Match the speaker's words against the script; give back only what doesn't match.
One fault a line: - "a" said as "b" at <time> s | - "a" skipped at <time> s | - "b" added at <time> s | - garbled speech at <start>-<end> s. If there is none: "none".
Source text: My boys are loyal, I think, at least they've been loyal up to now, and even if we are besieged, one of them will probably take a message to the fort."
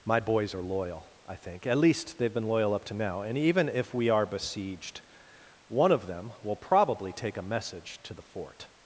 none